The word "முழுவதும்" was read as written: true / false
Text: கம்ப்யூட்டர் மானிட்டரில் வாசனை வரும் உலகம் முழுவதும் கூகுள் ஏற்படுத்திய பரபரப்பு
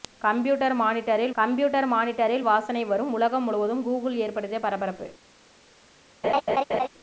true